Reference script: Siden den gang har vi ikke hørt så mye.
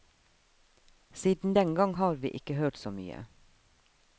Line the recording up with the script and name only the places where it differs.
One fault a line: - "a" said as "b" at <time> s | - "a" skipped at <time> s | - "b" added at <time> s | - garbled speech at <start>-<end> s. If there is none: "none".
none